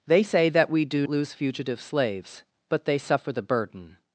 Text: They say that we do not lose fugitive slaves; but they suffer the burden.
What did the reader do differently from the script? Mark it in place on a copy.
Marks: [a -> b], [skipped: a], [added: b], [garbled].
They say that we do [skipped: not] lose fugitive slaves; but they suffer the burden.